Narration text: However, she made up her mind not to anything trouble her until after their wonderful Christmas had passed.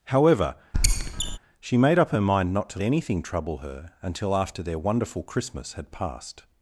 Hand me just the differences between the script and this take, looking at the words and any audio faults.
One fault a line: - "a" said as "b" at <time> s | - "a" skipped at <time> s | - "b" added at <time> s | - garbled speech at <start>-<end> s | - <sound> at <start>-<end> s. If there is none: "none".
- squeak at 0.7-1.4 s